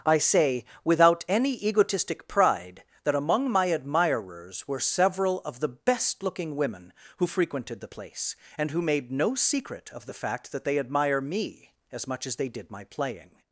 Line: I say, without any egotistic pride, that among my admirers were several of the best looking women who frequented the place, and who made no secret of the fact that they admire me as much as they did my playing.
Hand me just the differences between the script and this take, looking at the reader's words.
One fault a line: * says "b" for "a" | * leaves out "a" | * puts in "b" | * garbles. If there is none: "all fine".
all fine